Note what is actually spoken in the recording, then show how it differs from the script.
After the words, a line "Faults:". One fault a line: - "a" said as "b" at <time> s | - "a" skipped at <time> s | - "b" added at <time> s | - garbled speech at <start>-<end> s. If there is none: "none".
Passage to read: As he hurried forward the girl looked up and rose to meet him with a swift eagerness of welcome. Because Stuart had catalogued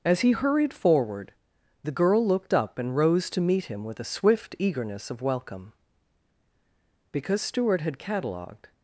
As he hurried forward the girl looked up and rose to meet him with a swift eagerness of welcome. Because Stuart had catalogued
Faults:
none